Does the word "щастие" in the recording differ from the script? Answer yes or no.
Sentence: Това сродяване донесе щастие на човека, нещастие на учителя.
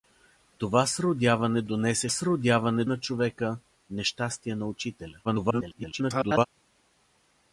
yes